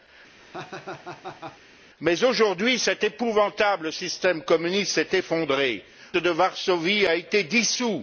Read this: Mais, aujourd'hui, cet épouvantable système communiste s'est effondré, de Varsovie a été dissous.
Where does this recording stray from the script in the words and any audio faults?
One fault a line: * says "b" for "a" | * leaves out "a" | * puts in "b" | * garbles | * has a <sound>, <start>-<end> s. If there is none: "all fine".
* has a laugh, 0.4-1.6 s